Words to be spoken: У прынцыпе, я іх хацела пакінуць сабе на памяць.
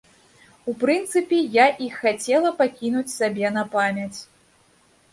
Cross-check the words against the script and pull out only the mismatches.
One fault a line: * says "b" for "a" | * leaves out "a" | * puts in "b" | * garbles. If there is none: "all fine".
all fine